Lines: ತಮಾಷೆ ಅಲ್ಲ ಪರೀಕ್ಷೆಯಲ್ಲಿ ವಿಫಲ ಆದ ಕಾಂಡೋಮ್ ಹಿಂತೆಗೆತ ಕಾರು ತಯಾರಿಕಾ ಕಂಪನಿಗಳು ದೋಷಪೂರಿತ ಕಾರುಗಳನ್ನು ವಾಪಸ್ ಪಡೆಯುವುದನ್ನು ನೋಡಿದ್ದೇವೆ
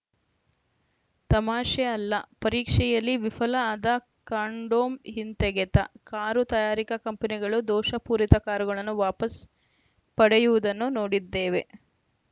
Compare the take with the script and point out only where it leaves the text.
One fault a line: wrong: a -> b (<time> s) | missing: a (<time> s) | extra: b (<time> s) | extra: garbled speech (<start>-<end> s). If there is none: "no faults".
no faults